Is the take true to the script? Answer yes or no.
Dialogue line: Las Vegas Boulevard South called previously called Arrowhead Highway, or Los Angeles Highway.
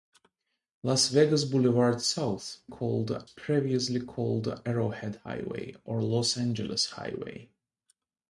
yes